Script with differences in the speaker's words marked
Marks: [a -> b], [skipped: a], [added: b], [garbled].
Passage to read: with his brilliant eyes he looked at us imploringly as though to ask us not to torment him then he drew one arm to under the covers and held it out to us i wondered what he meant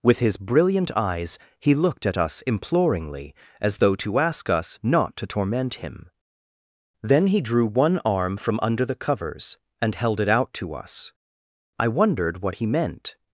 with his brilliant eyes he looked at us imploringly as though to ask us not to torment him then he drew one arm [to -> from] under the covers and held it out to us i wondered what he meant